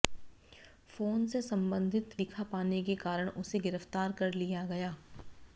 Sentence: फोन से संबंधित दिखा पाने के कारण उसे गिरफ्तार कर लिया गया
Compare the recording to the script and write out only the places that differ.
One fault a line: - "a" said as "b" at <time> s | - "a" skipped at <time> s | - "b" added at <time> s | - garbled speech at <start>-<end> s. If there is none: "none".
none